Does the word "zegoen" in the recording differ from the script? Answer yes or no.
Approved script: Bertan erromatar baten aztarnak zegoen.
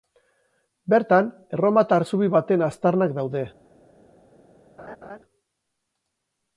yes